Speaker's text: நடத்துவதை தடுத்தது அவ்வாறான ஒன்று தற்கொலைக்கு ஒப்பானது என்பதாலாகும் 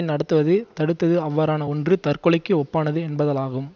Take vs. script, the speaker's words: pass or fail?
pass